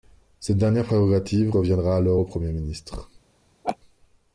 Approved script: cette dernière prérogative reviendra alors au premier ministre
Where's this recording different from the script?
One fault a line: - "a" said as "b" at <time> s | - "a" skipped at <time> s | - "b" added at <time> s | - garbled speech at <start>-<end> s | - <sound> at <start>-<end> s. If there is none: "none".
- laugh at 3.6-3.8 s